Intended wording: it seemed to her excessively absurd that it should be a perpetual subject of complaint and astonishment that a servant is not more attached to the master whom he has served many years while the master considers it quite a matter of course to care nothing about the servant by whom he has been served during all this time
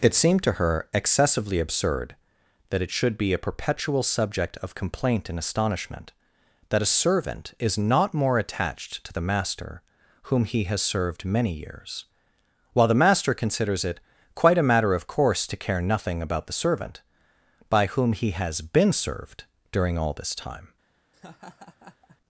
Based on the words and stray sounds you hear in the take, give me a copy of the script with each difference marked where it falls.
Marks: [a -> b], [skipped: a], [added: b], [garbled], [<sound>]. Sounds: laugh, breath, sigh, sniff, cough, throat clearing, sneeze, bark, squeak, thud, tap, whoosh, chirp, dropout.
it seemed to her excessively absurd that it should be a perpetual subject of complaint and astonishment that a servant is not more attached to the master whom he has served many years while the master considers it quite a matter of course to care nothing about the servant by whom he has been served during all this time [laugh]